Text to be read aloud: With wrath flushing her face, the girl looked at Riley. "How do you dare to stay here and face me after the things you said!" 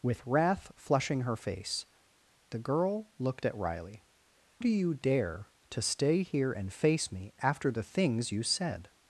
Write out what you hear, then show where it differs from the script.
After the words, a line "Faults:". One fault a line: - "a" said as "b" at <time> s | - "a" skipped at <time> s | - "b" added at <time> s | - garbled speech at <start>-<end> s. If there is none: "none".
With wrath flushing her face, the girl looked at Riley. "Do you dare to stay here and face me after the things you said!"
Faults:
- "How" skipped at 4.0 s